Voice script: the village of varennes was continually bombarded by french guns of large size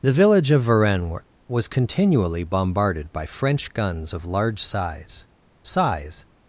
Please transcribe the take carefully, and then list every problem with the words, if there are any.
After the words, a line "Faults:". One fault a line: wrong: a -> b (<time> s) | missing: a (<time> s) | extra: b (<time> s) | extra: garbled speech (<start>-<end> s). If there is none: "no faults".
the village of varennes was continually bombarded by french guns of large size size
Faults:
extra: size (5.6 s)